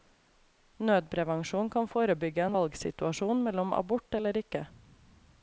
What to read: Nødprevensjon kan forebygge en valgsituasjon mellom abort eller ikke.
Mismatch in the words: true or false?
false